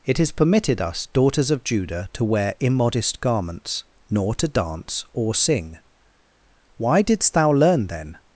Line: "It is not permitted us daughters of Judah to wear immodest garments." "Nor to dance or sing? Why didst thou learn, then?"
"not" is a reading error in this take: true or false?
true